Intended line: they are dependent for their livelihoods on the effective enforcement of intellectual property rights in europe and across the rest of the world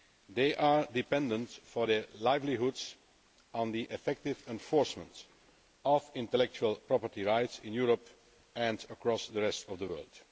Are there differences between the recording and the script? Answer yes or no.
no